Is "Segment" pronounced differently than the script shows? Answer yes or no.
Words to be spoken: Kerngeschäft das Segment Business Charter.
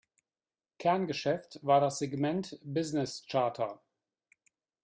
no